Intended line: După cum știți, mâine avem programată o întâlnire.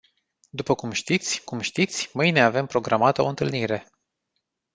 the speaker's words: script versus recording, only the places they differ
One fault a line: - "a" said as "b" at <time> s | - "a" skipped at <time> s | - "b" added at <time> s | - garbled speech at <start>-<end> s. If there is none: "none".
- "cum știți" added at 1.4 s